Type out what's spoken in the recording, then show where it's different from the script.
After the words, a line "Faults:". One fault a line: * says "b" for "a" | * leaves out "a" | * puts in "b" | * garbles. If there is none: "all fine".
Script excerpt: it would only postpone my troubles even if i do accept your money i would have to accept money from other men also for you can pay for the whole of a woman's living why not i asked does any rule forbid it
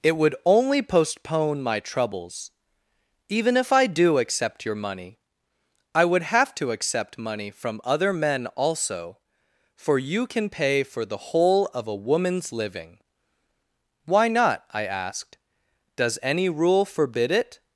it would only postpone my troubles even if i do accept your money i would have to accept money from other men also for you can pay for the whole of a woman's living why not i asked does any rule forbid it
Faults:
all fine